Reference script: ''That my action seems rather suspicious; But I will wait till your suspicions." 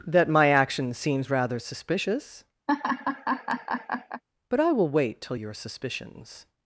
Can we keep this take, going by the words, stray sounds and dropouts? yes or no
no